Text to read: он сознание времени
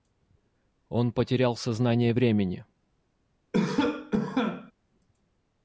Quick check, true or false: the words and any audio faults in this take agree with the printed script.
false